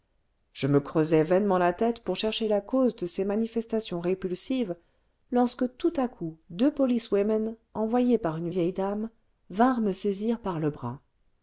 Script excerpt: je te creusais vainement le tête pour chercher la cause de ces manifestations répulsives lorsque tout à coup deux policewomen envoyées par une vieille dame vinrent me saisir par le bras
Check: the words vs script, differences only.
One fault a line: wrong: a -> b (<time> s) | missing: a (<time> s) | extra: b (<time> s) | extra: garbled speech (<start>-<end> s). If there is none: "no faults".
wrong: te -> me (0.7 s)
wrong: le -> la (1.6 s)